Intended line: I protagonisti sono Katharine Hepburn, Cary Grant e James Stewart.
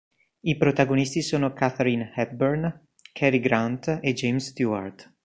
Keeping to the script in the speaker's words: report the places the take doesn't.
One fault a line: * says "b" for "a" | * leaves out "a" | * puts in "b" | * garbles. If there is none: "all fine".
all fine